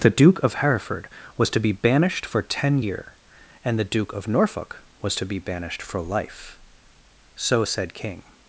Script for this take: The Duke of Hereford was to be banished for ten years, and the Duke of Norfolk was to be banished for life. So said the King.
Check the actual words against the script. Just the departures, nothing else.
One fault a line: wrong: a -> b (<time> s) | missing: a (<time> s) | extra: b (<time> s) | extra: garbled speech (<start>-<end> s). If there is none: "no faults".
wrong: years -> year (2.8 s)
missing: the (7.9 s)